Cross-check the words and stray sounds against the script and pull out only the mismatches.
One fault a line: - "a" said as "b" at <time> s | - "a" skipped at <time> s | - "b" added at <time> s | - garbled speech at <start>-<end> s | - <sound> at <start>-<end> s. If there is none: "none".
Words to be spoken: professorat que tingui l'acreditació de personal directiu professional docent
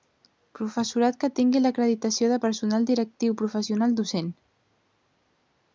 none